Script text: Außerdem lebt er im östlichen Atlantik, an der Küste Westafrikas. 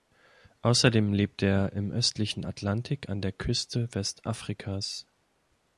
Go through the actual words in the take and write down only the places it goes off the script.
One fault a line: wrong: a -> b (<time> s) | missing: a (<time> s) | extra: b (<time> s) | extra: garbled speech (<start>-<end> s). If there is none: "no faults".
no faults